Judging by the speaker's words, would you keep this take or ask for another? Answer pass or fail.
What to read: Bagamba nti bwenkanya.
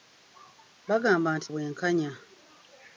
pass